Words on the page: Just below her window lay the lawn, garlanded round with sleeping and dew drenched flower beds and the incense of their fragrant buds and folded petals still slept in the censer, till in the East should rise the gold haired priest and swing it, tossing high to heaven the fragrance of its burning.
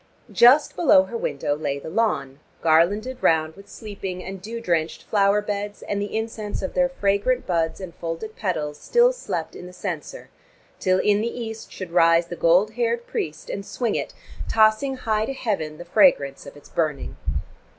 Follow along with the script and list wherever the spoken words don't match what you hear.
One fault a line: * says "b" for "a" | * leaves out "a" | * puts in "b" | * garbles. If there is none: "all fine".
all fine